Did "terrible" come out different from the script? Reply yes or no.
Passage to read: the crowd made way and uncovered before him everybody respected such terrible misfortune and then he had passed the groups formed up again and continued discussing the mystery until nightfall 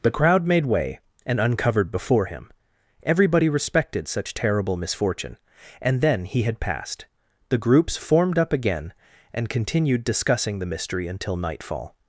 no